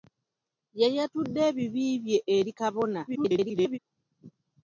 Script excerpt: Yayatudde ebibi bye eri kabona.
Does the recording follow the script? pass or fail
fail